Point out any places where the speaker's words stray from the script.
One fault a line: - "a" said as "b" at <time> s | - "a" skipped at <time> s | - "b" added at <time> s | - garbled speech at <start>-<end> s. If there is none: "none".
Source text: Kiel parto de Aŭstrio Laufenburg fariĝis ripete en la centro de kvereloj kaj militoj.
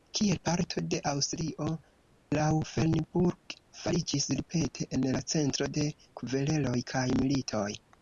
none